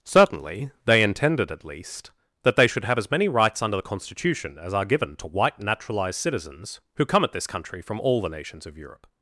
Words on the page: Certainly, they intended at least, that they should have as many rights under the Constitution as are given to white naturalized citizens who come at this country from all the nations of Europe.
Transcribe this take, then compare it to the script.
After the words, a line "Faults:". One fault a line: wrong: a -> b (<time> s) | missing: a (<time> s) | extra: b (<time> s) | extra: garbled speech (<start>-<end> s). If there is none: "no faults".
Certainly, they intended at least, that they should have as many rights under the Constitution as are given to white naturalized citizens who come at this country from all the nations of Europe.
Faults:
no faults